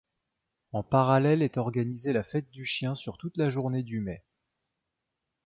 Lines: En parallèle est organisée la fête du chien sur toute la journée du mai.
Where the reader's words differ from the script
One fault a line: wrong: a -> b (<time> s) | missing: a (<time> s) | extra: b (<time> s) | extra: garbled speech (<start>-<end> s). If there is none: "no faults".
no faults